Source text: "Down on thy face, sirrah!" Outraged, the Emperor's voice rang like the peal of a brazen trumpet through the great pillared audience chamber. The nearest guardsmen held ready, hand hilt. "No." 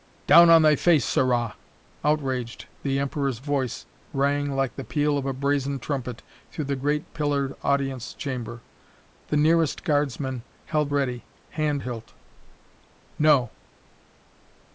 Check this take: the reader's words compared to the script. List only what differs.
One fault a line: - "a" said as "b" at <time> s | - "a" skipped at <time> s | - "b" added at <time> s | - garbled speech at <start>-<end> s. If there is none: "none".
none